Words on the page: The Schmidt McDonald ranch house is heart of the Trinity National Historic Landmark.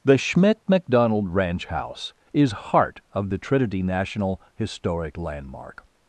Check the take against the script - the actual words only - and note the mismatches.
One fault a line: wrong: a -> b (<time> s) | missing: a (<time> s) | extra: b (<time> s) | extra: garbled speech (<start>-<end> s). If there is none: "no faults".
no faults